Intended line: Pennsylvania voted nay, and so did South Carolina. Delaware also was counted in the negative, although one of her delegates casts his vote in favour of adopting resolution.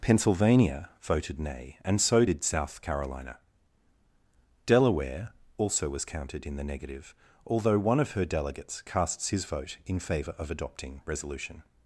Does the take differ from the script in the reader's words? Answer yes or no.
no